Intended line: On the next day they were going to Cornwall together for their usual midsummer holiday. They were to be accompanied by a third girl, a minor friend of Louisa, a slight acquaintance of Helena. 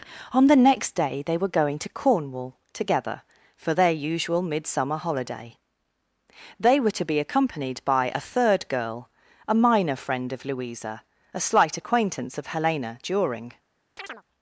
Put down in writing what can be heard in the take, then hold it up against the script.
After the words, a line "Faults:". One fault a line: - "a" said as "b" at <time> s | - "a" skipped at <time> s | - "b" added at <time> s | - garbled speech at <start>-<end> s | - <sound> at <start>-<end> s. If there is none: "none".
On the next day they were going to Cornwall together for their usual midsummer holiday. They were to be accompanied by a third girl, a minor friend of Louisa, a slight acquaintance of Helena. During
Faults:
- "During" added at 13.0 s
- chirp at 14.0-14.2 s